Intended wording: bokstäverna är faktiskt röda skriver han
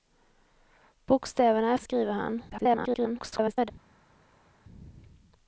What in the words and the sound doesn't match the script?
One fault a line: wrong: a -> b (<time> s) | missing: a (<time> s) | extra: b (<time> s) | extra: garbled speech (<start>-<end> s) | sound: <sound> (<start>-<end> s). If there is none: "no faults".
missing: faktiskt röda (1.8 s)
extra: garbled speech (2.5-3.7 s)